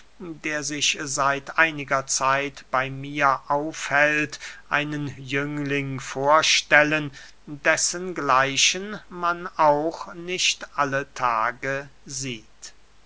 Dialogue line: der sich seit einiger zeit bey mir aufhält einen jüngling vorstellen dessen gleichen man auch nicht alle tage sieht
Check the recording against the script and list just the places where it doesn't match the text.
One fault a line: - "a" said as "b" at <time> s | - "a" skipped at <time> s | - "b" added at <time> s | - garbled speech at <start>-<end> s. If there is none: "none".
none